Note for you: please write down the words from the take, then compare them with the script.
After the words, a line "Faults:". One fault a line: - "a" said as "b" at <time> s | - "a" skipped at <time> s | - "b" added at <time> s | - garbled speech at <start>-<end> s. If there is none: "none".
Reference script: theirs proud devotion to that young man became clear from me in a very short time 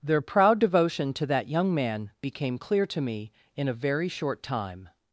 their proud devotion to that young man became clear to me in a very short time
Faults:
- "theirs" said as "their" at 0.0 s
- "from" said as "to" at 2.9 s